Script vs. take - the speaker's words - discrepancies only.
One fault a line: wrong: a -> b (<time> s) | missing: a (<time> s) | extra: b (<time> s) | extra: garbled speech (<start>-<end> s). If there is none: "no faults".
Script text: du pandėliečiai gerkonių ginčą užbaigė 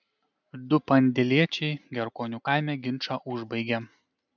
extra: kaime (2.5 s)